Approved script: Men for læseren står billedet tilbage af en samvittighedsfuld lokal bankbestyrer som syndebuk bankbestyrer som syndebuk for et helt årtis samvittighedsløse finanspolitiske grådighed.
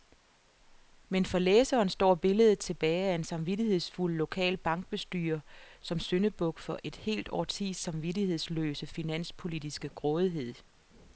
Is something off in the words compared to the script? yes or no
yes